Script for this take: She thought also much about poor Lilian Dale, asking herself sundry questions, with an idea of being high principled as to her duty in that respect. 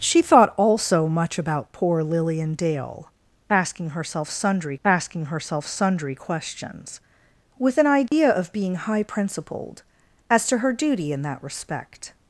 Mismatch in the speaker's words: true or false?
true